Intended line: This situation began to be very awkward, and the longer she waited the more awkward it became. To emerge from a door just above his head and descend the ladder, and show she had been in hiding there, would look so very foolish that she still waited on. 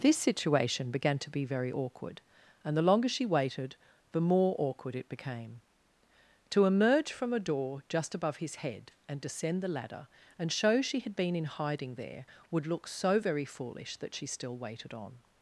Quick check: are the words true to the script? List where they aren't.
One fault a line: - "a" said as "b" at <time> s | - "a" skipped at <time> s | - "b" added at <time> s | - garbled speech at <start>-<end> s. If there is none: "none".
none